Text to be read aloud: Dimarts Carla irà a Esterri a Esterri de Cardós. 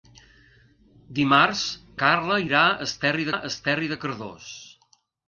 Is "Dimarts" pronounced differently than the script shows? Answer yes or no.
no